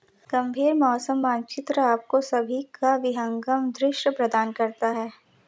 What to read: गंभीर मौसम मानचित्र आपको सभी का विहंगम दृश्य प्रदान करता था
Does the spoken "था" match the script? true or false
false